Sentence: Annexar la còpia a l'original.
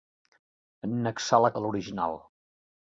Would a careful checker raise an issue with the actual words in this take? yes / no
yes